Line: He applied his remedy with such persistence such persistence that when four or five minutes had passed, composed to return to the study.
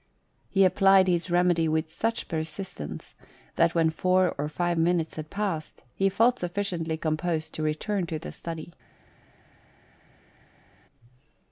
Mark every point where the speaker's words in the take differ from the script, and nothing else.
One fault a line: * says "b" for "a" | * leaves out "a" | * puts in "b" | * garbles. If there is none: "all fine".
* leaves out "such persistence"
* puts in "he felt sufficiently"